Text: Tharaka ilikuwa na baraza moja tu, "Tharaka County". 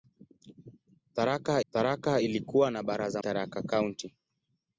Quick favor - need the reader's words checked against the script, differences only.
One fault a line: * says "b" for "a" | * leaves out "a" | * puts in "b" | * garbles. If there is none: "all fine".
* puts in "tharaka"
* leaves out "moja tu"